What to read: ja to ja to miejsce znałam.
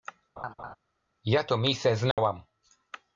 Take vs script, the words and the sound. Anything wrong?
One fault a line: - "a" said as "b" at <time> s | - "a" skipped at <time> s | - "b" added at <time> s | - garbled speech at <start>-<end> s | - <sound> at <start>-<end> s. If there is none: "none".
- laugh at 0.4-0.8 s
- "ja to" skipped at 1.6 s
- dropout at 2.1-2.2 s